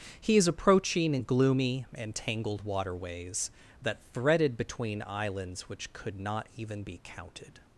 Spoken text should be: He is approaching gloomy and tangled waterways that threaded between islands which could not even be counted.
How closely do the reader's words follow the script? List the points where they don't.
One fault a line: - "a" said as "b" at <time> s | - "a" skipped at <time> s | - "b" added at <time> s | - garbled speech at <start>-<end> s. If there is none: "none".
none